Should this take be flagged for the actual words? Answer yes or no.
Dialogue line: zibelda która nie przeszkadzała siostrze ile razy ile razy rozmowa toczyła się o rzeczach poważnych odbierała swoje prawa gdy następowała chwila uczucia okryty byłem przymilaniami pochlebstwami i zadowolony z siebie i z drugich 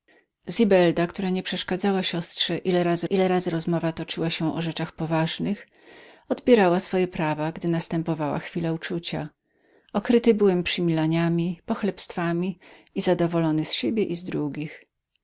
no